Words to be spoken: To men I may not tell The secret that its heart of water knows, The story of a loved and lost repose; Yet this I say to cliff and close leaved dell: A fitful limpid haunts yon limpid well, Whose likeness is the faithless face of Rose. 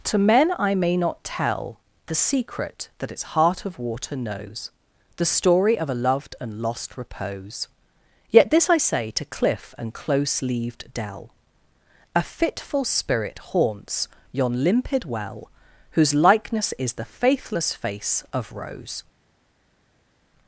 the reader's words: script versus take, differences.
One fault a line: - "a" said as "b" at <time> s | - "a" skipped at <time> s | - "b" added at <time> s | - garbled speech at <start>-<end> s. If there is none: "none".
- "limpid" said as "spirit" at 12.8 s